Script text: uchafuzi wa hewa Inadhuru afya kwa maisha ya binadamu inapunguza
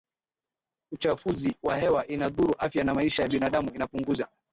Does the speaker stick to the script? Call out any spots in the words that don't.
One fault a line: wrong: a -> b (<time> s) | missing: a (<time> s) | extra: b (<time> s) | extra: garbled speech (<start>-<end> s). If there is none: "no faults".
wrong: kwa -> na (2.8 s)